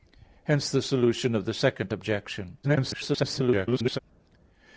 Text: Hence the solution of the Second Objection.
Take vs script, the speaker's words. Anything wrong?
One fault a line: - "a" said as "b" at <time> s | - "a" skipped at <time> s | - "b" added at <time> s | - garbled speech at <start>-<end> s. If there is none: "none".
- garbled speech at 2.6-4.0 s